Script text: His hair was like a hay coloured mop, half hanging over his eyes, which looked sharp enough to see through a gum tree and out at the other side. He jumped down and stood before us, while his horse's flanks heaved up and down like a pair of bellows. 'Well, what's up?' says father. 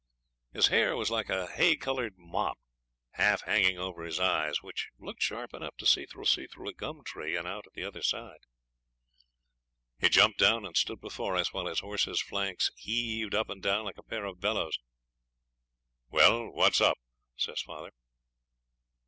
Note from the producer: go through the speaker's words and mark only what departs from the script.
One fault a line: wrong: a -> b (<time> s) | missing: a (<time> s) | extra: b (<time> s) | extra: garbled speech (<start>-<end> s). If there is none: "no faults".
extra: see through (6.2 s)